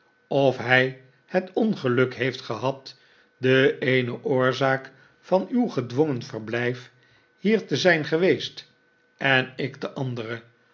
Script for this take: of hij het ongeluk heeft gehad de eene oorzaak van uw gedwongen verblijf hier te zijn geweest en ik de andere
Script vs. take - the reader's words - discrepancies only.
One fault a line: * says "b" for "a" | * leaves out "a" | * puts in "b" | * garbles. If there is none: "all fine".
all fine